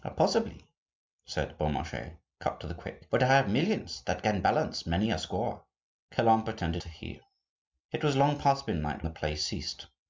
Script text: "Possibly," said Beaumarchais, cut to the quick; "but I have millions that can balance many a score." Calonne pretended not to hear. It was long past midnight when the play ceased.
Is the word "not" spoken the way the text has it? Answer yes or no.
no